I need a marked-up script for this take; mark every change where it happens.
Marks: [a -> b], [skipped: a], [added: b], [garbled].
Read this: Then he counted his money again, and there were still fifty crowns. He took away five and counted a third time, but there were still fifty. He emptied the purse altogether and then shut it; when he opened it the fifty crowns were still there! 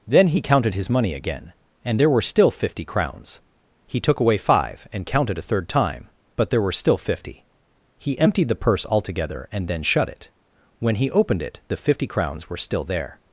Then he counted his money again, and there were still fifty crowns. He took away five and counted a third time, but there were still fifty. He emptied the purse altogether and then shut it; when he opened it the fifty crowns were still there!